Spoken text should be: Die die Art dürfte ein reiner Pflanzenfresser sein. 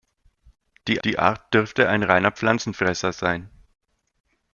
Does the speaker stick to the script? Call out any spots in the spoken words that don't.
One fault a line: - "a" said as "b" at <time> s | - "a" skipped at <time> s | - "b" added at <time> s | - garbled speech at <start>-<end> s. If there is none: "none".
none